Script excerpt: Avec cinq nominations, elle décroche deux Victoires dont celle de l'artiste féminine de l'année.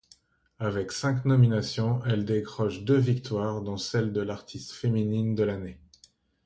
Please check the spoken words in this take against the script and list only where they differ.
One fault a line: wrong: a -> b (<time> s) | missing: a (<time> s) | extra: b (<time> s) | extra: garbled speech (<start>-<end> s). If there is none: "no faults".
no faults